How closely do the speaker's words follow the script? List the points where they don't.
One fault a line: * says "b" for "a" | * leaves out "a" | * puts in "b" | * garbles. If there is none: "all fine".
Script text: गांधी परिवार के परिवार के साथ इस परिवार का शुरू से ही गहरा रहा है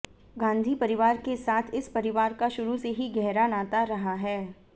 * leaves out "परिवार के"
* puts in "नाता"